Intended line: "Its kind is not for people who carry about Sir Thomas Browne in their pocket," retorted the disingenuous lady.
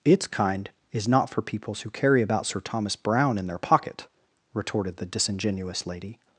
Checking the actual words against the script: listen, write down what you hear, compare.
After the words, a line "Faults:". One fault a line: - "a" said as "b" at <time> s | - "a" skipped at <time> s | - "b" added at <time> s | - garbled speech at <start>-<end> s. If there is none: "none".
"Its kind is not for peoples who carry about Sir Thomas Browne in their pocket," retorted the disingenuous lady.
Faults:
- "people" said as "peoples" at 1.4 s